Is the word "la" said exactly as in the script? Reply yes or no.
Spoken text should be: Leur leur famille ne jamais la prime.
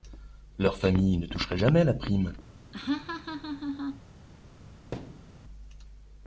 yes